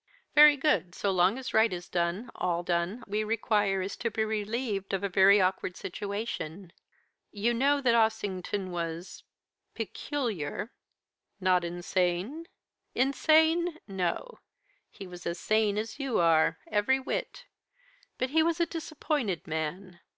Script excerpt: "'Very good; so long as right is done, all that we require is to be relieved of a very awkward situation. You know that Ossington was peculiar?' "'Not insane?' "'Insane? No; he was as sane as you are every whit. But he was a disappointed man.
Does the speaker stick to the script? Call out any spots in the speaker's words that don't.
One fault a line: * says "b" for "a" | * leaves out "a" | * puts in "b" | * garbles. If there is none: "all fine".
* says "done" for "that"